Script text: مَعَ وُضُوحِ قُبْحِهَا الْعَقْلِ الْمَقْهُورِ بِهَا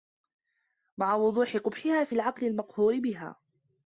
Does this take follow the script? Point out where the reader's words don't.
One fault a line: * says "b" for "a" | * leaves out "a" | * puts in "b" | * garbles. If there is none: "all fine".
* puts in "فِي"